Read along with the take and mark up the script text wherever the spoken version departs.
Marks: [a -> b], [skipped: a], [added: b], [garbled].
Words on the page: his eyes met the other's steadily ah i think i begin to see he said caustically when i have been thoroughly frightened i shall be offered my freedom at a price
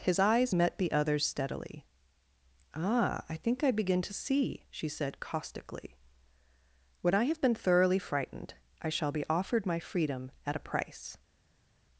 his eyes met the other's steadily ah i think i begin to see [he -> she] said caustically when i have been thoroughly frightened i shall be offered my freedom at a price